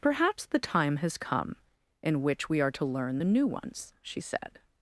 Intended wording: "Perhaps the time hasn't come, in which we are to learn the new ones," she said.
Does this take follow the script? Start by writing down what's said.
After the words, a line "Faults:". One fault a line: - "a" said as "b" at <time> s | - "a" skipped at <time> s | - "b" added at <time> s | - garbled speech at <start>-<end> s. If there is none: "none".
"Perhaps the time has come, in which we are to learn the new ones," she said.
Faults:
- "hasn't" said as "has" at 1.0 s